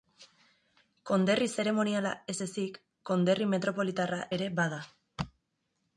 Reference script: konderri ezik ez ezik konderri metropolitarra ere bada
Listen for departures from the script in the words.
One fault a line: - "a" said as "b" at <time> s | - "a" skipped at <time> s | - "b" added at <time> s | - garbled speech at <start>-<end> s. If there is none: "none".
- "ezik" said as "zeremoniala" at 1.6 s